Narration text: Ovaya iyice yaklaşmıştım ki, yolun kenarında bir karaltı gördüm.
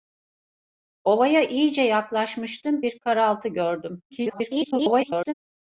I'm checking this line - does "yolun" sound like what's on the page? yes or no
no